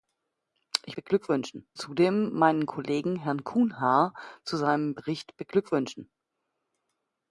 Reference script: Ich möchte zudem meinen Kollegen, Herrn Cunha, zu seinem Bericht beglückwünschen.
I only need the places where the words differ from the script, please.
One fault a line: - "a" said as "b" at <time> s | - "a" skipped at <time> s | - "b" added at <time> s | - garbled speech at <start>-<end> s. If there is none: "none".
- "möchte" said as "beglückwünschen" at 0.9 s